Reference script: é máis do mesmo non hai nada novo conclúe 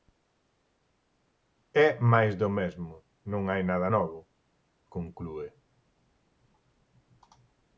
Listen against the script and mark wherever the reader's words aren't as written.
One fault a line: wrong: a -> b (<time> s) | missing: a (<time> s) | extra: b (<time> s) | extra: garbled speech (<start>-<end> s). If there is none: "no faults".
no faults